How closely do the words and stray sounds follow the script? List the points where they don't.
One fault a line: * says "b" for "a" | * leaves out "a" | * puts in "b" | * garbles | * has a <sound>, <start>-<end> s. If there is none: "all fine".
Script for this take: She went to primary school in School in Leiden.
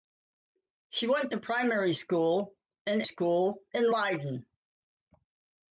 all fine